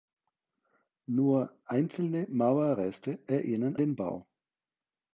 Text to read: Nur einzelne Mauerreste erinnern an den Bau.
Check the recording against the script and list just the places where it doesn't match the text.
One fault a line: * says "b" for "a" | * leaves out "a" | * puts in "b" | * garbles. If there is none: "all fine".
* leaves out "an"